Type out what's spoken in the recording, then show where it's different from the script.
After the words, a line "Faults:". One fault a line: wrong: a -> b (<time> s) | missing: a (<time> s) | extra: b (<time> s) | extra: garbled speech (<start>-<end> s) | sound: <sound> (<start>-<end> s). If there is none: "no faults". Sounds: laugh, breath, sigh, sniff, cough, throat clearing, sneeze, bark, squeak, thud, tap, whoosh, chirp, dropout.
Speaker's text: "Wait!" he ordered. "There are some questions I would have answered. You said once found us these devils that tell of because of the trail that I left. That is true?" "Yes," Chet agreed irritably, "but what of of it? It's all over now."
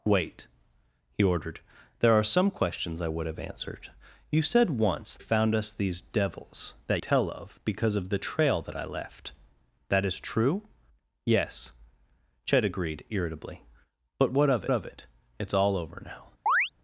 "Wait!" he ordered. "There are some questions I would have answered. You said once found us these devils that tell of because of the trail that I left. That is true?" "Yes," Chet agreed irritably, "but what of of it? It's all over now."
Faults:
sound: chirp (16.5-16.7 s)